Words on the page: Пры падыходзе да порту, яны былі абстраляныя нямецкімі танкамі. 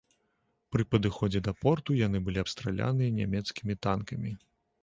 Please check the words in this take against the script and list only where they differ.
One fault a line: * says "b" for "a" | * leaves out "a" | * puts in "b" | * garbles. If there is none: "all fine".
all fine